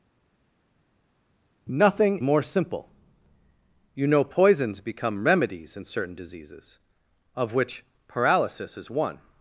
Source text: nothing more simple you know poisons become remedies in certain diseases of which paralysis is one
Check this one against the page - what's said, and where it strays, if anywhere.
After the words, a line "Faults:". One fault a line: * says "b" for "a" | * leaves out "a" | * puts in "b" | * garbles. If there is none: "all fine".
nothing more simple you know poisons become remedies in certain diseases of which paralysis is one
Faults:
all fine